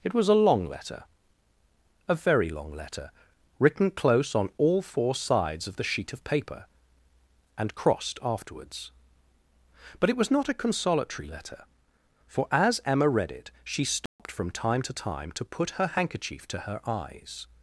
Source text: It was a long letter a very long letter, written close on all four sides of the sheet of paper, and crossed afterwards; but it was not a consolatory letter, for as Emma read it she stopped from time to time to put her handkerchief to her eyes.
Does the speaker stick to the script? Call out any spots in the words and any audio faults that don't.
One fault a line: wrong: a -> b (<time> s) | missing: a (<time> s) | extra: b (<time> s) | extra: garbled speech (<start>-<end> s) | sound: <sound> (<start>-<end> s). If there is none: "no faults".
sound: dropout (14.1-14.2 s)